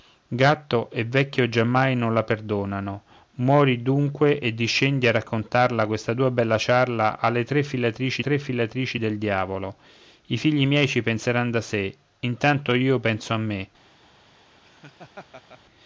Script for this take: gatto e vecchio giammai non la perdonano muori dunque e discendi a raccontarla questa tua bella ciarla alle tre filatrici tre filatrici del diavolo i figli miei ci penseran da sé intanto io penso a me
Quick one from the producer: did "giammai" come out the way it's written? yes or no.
yes